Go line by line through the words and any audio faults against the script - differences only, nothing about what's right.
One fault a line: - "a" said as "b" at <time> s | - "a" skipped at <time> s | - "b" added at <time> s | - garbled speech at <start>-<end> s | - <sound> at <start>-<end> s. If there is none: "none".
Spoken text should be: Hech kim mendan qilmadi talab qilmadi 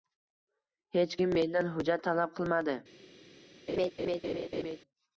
- "qilmadi" said as "hujjat" at 1.8 s
- laugh at 3.7-4.8 s